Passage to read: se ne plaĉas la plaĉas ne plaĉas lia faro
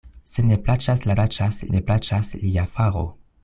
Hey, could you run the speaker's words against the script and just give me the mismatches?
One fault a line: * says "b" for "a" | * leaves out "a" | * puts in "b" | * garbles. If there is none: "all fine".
all fine